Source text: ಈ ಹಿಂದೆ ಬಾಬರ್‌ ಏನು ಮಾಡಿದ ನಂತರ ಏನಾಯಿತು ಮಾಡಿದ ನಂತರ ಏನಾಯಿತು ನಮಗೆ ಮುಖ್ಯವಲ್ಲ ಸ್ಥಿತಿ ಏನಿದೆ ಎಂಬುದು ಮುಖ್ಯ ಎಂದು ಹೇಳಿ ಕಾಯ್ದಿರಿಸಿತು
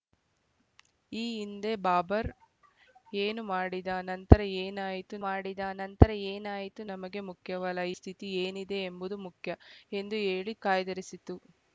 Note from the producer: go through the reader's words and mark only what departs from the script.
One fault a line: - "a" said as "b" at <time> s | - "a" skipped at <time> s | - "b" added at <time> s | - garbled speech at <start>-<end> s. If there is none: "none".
none